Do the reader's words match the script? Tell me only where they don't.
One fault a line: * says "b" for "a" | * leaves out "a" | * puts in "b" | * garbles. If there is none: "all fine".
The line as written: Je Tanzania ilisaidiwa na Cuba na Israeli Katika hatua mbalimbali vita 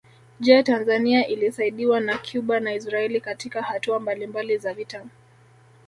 * puts in "za"